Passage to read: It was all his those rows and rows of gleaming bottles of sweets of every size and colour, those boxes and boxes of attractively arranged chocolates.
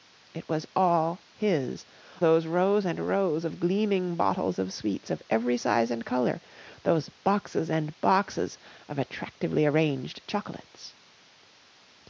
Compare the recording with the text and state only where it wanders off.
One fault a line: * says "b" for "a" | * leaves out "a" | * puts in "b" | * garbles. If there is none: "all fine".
all fine